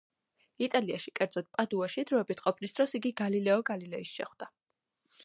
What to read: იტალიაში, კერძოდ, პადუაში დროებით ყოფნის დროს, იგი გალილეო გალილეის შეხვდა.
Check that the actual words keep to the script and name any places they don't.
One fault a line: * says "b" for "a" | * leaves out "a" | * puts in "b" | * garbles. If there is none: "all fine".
all fine